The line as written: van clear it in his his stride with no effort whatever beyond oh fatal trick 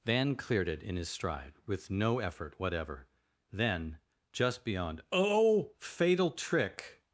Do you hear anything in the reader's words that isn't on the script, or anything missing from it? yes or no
yes